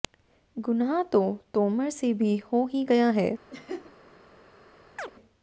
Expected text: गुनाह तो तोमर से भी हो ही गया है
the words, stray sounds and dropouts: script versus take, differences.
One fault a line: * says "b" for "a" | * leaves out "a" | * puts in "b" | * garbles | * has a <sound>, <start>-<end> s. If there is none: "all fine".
* has a laugh, 3.5-3.9 s
* has a chirp, 5.0-5.1 s